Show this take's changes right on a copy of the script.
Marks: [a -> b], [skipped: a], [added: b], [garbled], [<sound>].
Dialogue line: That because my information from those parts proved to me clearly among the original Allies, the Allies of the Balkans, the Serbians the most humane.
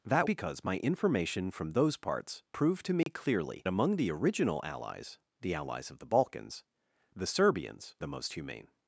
That because my information from those parts proved to me [dropout] clearly among the original Allies, the Allies of the Balkans, the Serbians the most humane.